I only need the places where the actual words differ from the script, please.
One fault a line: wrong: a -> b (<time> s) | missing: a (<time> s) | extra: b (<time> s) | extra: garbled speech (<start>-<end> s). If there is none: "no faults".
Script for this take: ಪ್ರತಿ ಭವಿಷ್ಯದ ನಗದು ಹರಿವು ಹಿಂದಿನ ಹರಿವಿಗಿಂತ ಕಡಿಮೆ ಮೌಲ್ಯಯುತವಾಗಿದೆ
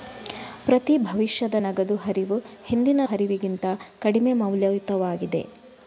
no faults